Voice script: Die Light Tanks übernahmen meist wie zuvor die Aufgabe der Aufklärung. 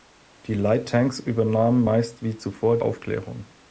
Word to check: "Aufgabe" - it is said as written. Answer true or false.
false